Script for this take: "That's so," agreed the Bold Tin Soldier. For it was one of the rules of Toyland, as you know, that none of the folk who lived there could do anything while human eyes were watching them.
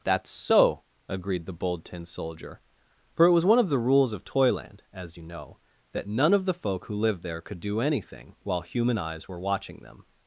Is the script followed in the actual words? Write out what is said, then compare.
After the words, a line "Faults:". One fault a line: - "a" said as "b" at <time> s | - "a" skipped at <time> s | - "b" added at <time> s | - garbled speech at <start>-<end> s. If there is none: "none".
"That's so," agreed the Bold Tin Soldier. For it was one of the rules of Toyland, as you know, that none of the folk who lived there could do anything while human eyes were watching them.
Faults:
none